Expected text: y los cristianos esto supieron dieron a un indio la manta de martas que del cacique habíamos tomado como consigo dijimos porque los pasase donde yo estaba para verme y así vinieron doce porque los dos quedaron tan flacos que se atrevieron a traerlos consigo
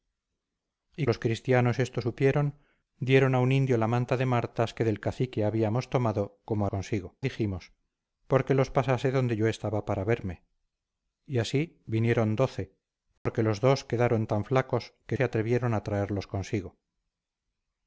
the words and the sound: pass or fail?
fail